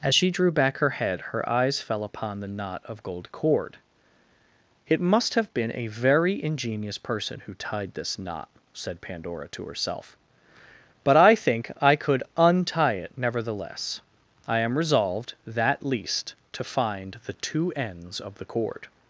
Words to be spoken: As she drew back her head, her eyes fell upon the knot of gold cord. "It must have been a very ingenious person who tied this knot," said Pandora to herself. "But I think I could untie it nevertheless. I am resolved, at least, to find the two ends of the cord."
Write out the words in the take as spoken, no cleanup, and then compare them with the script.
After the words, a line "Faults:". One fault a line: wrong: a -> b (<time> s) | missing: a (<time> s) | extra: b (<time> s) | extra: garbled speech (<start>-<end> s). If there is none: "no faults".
As she drew back her head, her eyes fell upon the knot of gold cord. "It must have been a very ingenious person who tied this knot," said Pandora to herself. "But I think I could untie it nevertheless. I am resolved, that least, to find the two ends of the cord."
Faults:
wrong: at -> that (15.5 s)